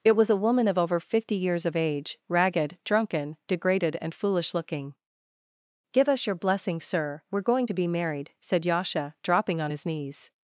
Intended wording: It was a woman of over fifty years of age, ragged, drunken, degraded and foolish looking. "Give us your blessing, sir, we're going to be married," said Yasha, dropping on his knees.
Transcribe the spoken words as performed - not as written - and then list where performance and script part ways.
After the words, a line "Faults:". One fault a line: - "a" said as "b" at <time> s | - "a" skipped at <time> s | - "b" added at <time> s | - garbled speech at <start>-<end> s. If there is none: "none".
It was a woman of over fifty years of age, ragged, drunken, degraded and foolish looking. "Give us your blessing, sir, we're going to be married," said Yasha, dropping on his knees.
Faults:
none